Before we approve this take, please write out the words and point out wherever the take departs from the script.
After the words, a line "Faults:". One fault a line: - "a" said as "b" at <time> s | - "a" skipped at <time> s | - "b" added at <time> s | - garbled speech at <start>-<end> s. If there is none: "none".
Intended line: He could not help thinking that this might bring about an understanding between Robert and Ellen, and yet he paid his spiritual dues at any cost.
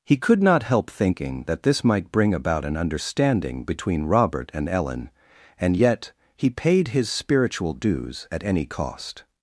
He could not help thinking that this might bring about an understanding between Robert and Ellen, and yet he paid his spiritual dues at any cost.
Faults:
none